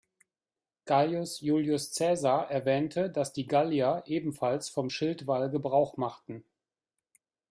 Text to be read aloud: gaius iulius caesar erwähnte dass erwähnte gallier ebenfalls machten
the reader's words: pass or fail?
fail